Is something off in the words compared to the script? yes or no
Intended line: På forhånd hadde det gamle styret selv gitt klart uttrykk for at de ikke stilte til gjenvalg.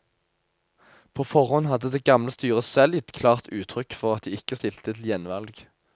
no